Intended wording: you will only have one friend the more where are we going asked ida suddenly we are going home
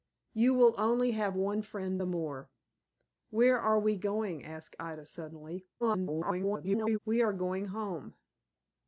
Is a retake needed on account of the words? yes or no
yes